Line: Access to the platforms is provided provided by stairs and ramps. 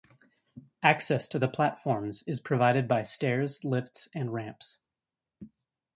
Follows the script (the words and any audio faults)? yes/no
no